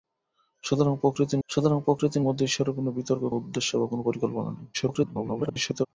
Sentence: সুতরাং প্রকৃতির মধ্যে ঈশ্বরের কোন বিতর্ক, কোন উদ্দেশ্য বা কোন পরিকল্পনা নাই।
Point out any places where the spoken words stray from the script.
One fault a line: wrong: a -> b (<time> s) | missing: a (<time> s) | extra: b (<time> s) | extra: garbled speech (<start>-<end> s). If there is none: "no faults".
extra: সুতরাং প্রকৃতির (1.5 s)
missing: কোন (3.2 s)
extra: garbled speech (4.7-5.9 s)